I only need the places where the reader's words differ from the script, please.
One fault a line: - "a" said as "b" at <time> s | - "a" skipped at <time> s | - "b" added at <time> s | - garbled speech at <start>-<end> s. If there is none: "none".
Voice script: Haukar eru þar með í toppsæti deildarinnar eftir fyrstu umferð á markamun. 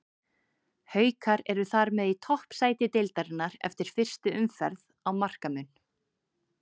none